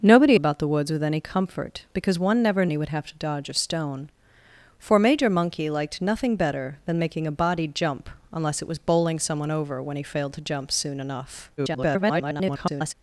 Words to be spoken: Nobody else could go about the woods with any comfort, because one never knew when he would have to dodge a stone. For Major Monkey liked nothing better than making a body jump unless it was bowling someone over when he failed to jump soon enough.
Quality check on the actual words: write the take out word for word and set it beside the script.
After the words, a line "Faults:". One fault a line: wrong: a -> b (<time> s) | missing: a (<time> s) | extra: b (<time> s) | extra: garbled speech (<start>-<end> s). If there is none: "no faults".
Nobody about the woods with any comfort, because one never he would have to dodge a stone. For Major Monkey liked nothing better than making a body jump unless it was bowling someone over when he failed to jump soon enough. [garbled]
Faults:
missing: else could go (0.4 s)
missing: knew when (2.7 s)
extra: garbled speech (11.6-12.9 s)